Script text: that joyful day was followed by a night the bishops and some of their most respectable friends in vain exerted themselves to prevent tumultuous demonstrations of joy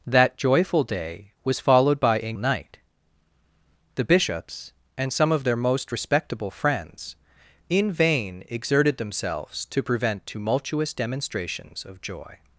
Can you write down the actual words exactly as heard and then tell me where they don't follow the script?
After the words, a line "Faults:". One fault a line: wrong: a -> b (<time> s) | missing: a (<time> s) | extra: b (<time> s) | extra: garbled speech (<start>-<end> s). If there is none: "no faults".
that joyful day was followed by a night the bishops and some of their most respectable friends in vain exerted themselves to prevent tumultuous demonstrations of joy
Faults:
no faults